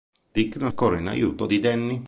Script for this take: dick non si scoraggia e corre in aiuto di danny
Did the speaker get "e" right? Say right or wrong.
wrong